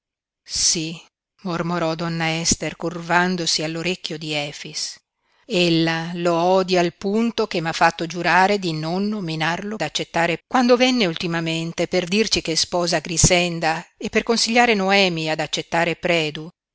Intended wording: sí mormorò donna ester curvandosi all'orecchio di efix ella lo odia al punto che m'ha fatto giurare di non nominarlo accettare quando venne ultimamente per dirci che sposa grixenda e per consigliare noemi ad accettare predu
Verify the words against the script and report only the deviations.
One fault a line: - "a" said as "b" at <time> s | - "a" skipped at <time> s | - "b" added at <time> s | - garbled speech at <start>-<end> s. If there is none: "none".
none